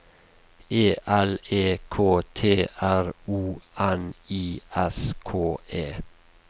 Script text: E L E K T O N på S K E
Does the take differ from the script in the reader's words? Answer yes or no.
yes